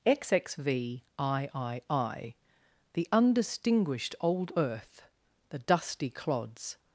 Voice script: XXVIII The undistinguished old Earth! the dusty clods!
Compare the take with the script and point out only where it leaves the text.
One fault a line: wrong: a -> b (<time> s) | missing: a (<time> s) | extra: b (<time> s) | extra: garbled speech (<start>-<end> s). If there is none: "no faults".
no faults